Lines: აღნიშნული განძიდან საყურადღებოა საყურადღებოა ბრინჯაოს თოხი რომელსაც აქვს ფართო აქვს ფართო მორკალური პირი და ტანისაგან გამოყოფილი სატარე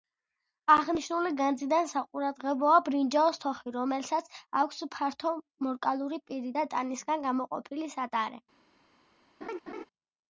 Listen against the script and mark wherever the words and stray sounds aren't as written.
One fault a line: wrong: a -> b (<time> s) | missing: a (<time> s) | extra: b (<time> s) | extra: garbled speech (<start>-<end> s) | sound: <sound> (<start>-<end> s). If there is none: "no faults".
missing: საყურადღებოა (2.8 s)
missing: აქვს ფართო (5.3 s)
sound: laugh (9.4-9.9 s)